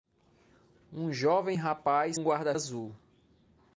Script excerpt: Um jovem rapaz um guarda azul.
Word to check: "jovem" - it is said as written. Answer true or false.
true